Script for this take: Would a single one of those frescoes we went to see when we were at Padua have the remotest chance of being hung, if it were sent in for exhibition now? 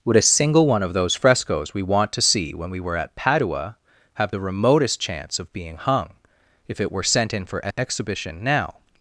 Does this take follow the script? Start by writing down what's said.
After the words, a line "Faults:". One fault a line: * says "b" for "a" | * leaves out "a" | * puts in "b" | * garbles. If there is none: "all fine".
Would a single one of those frescoes we want to see when we were at Padua have the remotest chance of being hung, if it were sent in for exhibition now?
Faults:
* says "want" for "went"